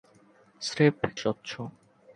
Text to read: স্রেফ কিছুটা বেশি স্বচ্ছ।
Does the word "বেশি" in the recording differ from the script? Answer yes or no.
yes